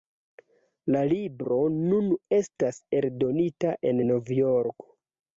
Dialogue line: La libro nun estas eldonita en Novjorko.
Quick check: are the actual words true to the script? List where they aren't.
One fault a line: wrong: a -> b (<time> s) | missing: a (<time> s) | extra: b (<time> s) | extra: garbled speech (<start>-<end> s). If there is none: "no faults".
no faults